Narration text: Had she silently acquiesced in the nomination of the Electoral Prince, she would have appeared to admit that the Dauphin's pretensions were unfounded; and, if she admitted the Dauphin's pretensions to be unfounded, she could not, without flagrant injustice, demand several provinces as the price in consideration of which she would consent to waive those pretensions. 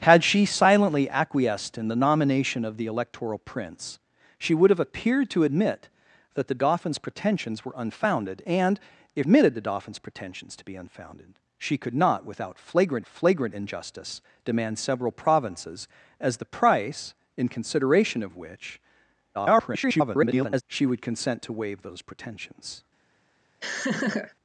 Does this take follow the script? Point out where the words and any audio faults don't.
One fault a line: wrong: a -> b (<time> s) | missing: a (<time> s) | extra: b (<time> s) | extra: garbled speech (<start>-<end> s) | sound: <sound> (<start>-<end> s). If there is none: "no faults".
missing: she (9.3 s)
extra: flagrant (13.1 s)
extra: garbled speech (19.3-20.6 s)
sound: laugh (23.6-24.3 s)